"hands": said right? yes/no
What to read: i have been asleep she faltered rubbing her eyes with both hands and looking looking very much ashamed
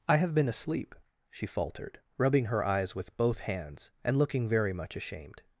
yes